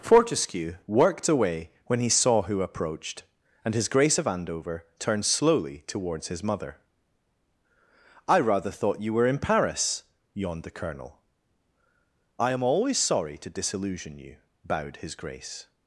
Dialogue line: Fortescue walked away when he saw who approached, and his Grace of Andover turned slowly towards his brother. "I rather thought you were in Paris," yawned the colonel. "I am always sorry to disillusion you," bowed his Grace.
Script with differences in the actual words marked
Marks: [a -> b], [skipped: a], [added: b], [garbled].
Fortescue [walked -> worked] away when he saw who approached, and his Grace of Andover turned slowly towards his [brother. -> mother] "I rather thought you were in Paris," yawned the colonel. "I am always sorry to disillusion you," bowed his Grace.